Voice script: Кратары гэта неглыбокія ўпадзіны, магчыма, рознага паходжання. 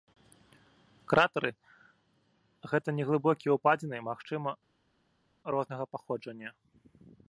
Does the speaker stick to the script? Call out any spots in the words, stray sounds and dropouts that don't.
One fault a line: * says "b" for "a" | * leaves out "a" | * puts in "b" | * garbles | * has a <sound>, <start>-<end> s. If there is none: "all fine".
all fine